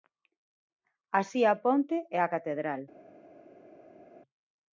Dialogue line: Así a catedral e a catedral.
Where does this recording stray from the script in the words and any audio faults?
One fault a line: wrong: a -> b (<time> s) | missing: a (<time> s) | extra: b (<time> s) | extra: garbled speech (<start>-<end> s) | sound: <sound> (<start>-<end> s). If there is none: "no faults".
wrong: catedral -> ponte (1.6 s)